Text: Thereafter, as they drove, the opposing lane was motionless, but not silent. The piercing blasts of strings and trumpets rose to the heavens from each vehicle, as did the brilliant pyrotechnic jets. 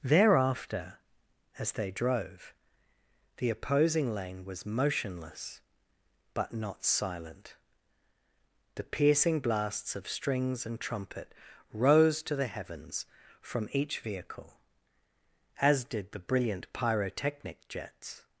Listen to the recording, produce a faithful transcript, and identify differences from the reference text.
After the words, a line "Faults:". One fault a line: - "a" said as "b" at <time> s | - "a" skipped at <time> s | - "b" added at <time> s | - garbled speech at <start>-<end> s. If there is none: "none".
Thereafter, as they drove, the opposing lane was motionless, but not silent. The piercing blasts of strings and trumpet rose to the heavens from each vehicle, as did the brilliant pyrotechnic jets.
Faults:
- "trumpets" said as "trumpet" at 10.8 s